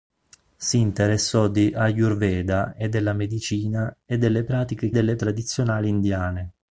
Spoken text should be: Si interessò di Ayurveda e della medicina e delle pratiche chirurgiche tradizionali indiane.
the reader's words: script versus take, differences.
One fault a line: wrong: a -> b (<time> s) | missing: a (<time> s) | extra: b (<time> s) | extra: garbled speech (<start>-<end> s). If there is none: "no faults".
wrong: chirurgiche -> delle (4.9 s)